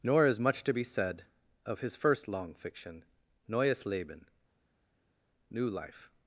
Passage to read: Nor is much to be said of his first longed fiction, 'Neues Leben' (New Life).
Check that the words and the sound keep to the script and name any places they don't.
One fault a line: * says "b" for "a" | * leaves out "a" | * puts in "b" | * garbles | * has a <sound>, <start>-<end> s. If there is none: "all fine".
* says "long" for "longed"